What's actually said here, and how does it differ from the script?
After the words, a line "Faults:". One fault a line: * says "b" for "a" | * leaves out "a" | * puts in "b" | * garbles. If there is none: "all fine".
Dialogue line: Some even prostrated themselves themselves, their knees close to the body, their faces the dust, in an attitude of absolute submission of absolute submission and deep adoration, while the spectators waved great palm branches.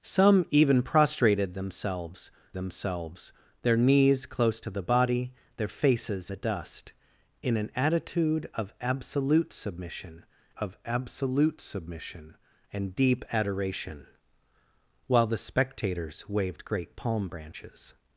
Some even prostrated themselves themselves, their knees close to the body, their faces the dust, in an attitude of absolute submission of absolute submission and deep adoration, while the spectators waved great palm branches.
Faults:
all fine